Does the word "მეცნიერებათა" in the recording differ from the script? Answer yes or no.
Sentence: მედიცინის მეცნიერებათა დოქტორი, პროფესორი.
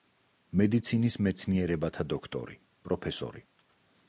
no